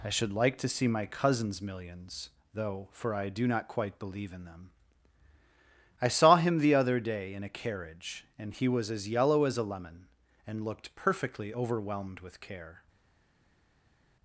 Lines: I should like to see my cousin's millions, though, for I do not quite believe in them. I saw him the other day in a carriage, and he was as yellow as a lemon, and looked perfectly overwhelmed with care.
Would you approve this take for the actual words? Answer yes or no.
yes